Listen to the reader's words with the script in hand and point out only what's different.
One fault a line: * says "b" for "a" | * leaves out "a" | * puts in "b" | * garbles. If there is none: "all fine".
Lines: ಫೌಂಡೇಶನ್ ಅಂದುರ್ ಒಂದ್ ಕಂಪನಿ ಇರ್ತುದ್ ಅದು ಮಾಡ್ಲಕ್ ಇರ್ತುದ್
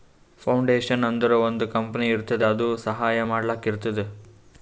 * puts in "ಸಹಾಯ"